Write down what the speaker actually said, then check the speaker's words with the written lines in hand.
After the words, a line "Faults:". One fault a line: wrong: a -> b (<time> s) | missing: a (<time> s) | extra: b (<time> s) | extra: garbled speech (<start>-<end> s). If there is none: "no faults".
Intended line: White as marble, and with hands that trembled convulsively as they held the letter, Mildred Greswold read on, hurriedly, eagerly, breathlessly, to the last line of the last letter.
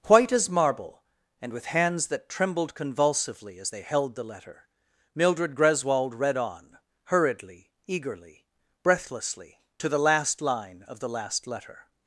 White as marble, and with hands that trembled convulsively as they held the letter, Mildred Greswold read on, hurriedly, eagerly, breathlessly, to the last line of the last letter.
Faults:
no faults